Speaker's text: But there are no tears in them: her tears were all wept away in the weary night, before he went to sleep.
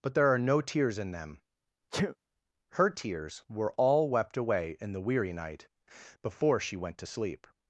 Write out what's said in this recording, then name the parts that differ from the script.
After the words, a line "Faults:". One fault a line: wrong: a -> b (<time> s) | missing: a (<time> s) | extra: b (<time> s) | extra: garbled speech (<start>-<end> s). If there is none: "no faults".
But there are no tears in them: her tears were all wept away in the weary night, before she went to sleep.
Faults:
wrong: he -> she (6.6 s)